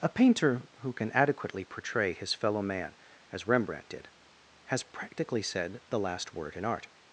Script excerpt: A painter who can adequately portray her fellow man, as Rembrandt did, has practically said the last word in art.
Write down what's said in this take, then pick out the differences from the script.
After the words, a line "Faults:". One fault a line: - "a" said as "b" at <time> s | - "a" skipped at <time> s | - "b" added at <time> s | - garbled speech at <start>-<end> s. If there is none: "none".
A painter who can adequately portray his fellow man, as Rembrandt did, has practically said the last word in art.
Faults:
- "her" said as "his" at 2.1 s